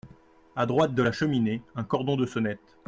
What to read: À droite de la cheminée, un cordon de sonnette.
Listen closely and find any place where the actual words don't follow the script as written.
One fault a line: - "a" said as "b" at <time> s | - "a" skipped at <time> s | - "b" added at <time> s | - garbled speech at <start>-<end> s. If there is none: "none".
none